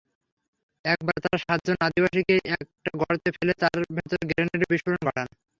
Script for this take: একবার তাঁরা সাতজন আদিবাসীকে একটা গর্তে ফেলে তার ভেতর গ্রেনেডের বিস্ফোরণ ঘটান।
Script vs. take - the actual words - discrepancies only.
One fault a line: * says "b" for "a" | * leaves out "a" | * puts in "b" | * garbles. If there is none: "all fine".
all fine